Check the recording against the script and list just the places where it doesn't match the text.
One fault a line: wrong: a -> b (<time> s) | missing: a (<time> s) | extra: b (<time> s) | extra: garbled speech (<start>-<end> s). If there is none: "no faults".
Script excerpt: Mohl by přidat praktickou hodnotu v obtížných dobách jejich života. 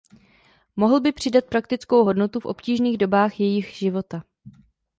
no faults